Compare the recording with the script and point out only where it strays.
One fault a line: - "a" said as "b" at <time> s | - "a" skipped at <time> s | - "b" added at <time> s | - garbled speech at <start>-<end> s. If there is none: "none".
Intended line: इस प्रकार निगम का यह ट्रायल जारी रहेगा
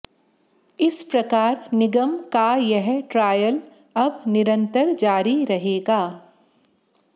- "अब निरंतर" added at 4.0 s